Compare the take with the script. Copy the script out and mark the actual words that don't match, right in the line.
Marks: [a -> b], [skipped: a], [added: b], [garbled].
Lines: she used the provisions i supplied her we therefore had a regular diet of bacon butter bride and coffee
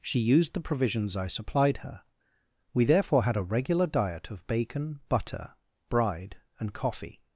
she used the provisions i supplied her we therefore had a regular diet of bacon butter bride and coffee